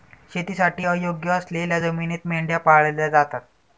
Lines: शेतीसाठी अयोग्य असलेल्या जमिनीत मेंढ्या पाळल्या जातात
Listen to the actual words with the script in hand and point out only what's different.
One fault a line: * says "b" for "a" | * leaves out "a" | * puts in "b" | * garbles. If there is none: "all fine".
all fine